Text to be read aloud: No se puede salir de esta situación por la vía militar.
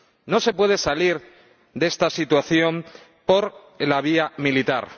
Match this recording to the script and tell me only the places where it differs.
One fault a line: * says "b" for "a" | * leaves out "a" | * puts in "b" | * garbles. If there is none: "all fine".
all fine